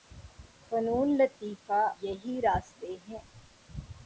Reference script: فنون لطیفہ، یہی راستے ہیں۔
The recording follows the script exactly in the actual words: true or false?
true